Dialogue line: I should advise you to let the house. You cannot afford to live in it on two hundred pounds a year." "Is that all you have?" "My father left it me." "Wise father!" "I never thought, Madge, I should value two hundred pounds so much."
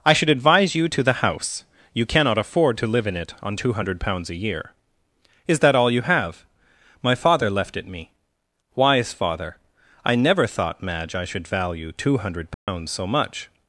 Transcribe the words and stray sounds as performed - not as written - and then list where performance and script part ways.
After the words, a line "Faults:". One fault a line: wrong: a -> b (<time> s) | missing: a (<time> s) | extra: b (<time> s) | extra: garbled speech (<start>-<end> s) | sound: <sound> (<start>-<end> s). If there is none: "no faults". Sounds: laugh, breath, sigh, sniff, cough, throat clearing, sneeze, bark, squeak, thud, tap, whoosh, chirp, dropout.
I should advise you to the house. You cannot afford to live in it on two hundred pounds a year." "Is that all you have?" "My father left it me." "Wise father!" "I never thought, Madge, I should value two hundred pounds so much."
Faults:
missing: let (1.0 s)
sound: dropout (12.5-12.7 s)